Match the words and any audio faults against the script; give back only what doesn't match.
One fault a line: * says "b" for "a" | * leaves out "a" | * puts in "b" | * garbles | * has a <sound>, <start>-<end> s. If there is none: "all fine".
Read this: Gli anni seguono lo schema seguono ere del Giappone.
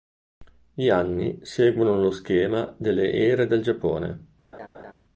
* says "delle" for "seguono"
* has a laugh, 4.5-4.9 s